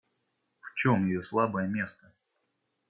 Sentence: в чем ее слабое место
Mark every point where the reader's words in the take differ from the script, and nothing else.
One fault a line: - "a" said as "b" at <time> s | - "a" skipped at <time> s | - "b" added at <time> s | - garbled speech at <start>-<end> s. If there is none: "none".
none